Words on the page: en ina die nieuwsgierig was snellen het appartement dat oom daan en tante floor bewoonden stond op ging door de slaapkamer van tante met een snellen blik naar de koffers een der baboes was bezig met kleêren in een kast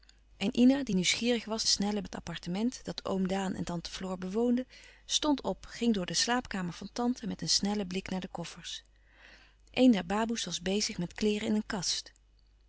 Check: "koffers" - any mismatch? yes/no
no